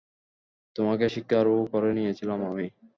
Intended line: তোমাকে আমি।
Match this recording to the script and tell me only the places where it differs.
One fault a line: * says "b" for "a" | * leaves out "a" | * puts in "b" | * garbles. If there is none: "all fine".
* puts in "স্বীকারও করে নিয়েছিলাম"